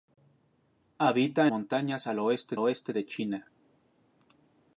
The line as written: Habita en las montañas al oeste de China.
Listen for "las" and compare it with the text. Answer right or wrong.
wrong